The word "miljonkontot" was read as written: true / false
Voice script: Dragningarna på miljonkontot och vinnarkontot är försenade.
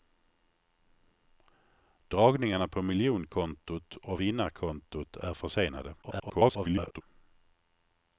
true